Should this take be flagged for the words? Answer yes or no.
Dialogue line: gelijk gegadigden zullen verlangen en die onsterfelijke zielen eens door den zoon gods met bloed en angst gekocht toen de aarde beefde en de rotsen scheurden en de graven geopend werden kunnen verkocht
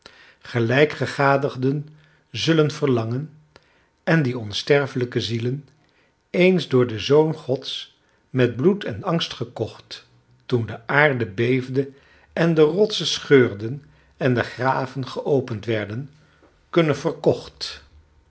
no